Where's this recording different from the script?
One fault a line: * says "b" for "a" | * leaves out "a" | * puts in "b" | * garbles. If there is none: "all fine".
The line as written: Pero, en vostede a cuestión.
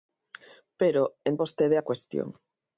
all fine